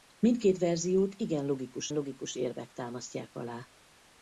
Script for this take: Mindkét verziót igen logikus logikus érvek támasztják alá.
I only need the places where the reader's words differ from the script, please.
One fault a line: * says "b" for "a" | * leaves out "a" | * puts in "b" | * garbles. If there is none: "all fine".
all fine